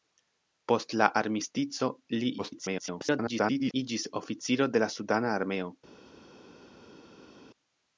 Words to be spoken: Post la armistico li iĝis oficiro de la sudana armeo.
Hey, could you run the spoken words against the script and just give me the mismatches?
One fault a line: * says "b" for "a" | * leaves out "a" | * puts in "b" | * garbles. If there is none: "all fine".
* garbles